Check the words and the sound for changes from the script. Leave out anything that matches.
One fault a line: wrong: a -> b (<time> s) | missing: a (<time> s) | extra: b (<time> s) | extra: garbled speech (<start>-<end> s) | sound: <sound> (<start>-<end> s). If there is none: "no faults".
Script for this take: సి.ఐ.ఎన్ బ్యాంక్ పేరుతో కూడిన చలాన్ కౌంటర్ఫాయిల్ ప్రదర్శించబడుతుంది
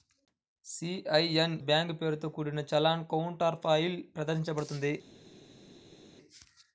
no faults